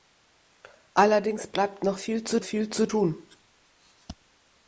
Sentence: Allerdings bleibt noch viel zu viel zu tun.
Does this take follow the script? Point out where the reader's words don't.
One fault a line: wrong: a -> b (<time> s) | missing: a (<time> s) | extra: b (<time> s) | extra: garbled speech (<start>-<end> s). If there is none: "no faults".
no faults